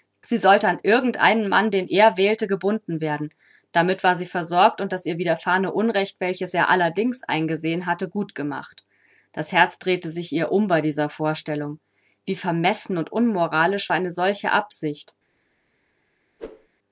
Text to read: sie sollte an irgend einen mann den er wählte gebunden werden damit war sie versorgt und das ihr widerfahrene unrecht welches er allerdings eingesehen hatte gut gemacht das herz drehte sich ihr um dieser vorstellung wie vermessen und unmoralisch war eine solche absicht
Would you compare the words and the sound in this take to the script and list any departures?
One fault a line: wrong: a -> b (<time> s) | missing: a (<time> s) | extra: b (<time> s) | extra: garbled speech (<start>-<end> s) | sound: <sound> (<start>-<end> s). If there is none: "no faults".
extra: bei (10.7 s)
sound: whoosh (16.4-16.7 s)